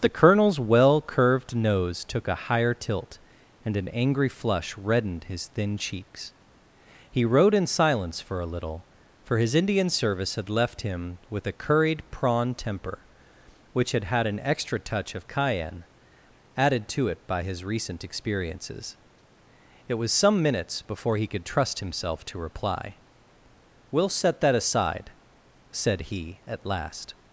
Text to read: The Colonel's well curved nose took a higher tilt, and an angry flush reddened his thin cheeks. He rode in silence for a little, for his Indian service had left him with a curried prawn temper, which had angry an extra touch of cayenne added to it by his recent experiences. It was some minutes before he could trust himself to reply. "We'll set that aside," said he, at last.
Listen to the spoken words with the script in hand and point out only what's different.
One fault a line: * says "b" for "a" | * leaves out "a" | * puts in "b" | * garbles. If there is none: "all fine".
* says "had" for "angry"